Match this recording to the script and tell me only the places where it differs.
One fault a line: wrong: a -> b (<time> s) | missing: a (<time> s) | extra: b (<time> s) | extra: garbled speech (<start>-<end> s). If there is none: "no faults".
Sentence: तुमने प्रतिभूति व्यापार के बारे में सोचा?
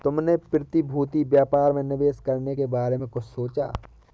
extra: में निवेश करने (1.7 s)
extra: कुछ (3.1 s)